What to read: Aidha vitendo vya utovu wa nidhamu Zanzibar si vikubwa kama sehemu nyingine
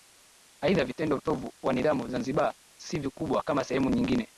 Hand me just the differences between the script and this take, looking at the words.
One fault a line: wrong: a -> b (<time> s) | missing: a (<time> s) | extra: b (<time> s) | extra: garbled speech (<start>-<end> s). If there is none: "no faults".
missing: vya (1.1 s)